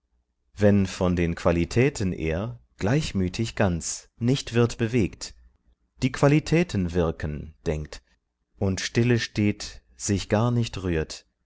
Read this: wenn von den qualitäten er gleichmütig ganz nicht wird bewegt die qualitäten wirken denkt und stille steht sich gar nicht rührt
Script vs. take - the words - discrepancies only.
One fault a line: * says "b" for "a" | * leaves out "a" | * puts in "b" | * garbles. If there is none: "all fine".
all fine